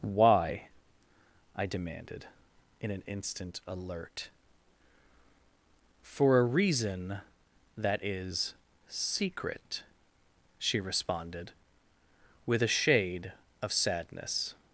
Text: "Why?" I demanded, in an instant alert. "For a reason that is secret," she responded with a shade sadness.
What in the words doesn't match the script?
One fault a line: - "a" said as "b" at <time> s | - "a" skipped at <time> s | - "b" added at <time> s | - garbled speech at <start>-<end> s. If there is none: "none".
- "of" added at 13.6 s